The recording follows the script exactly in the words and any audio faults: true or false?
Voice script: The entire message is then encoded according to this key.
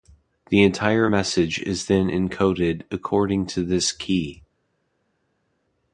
true